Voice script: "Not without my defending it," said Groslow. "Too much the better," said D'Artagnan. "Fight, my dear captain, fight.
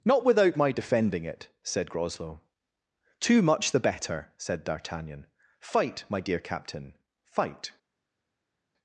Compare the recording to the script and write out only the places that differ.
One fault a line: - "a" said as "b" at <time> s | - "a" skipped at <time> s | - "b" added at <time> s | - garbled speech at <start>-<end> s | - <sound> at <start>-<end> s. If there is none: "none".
none